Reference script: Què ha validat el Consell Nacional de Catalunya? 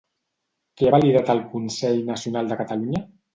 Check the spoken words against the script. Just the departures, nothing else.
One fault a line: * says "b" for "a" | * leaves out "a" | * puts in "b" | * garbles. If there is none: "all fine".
all fine